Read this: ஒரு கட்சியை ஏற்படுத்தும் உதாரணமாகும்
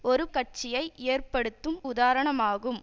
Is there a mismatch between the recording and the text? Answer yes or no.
no